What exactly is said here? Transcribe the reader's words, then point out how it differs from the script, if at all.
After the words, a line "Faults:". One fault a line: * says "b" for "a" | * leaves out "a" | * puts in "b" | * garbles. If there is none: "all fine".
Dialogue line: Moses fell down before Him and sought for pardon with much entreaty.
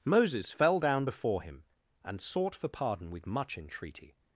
Moses fell down before Him and sought for pardon with much entreaty.
Faults:
all fine